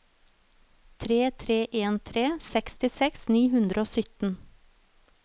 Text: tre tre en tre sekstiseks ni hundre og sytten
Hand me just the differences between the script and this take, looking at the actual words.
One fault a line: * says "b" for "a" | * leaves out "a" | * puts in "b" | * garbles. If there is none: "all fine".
all fine